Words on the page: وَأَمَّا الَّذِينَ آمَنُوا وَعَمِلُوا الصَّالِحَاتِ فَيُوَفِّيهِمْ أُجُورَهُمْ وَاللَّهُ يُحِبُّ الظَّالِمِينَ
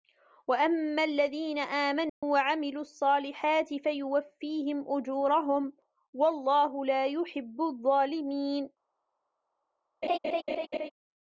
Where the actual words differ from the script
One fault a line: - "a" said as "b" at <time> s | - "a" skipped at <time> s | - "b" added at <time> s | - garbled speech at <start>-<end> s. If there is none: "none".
- "لَا" added at 6.8 s